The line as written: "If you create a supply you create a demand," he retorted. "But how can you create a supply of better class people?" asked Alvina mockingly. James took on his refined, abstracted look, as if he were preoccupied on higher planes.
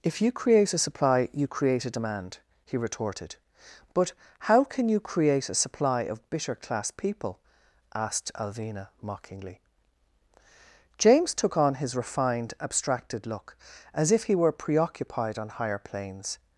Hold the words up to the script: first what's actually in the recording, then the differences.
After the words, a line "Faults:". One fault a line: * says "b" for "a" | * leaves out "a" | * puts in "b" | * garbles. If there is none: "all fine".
"If you create a supply you create a demand," he retorted. "But how can you create a supply of bitter class people?" asked Alvina mockingly. James took on his refined, abstracted look, as if he were preoccupied on higher planes.
Faults:
* says "bitter" for "better"